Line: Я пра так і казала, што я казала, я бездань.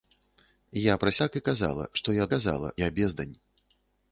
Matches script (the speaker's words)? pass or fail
pass